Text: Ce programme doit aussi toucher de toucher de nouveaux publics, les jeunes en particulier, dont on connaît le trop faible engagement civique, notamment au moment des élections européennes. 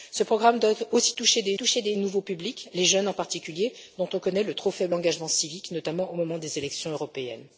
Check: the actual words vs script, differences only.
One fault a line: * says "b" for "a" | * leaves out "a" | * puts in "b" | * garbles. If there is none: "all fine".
all fine